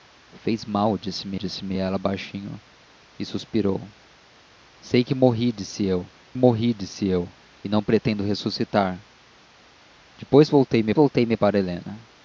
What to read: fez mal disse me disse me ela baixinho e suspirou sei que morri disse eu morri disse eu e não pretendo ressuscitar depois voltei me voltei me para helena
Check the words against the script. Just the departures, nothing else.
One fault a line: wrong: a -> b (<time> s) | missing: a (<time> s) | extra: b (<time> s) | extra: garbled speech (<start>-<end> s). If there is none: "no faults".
no faults